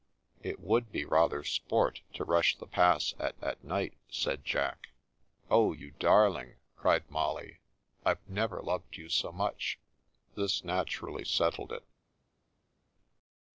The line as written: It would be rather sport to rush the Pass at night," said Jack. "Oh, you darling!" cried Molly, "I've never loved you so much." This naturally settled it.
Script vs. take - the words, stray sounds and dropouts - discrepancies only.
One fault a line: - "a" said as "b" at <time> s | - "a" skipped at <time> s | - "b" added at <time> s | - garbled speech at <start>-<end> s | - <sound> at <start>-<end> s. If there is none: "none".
- "at" added at 3.4 s